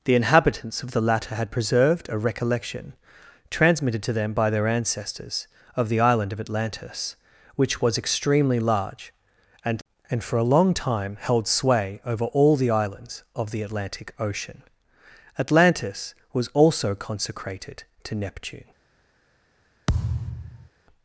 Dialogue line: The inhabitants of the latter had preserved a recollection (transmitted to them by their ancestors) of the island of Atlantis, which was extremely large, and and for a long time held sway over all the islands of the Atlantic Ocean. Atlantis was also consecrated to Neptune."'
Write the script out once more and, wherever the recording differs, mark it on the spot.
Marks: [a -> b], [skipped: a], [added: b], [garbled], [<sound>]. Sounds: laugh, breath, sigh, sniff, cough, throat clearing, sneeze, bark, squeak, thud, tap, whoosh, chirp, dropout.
The inhabitants of the latter had preserved a recollection (transmitted to them by their ancestors) of the island of Atlantis, which was extremely large, and and for a long time held sway over all the islands of the Atlantic Ocean. Atlantis was also consecrated to Neptune."' [thud]